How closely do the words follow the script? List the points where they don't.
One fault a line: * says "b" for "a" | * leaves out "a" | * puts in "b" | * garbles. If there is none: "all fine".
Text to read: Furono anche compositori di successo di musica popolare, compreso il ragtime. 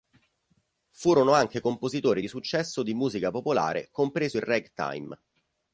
all fine